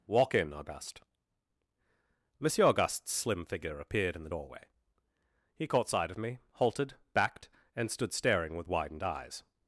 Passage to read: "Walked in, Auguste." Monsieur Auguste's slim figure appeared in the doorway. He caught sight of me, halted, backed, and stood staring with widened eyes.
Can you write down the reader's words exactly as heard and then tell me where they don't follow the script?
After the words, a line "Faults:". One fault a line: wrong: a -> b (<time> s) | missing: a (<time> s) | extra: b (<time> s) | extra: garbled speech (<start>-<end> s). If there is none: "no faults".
"Walk in, Auguste." Monsieur Auguste's slim figure appeared in the doorway. He caught sight of me, halted, backed, and stood staring with widened eyes.
Faults:
wrong: Walked -> Walk (0.1 s)